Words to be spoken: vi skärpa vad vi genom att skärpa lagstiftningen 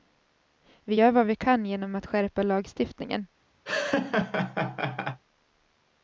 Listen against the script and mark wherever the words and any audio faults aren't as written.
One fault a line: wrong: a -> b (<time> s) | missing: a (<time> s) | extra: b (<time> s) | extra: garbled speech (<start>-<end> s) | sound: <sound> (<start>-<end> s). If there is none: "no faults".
wrong: skärpa -> gör (0.9 s)
extra: kan (1.3 s)
sound: laugh (3.7-5.2 s)